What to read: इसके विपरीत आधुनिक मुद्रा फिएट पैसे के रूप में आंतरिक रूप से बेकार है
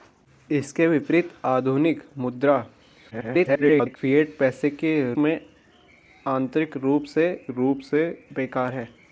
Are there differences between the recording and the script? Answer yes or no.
yes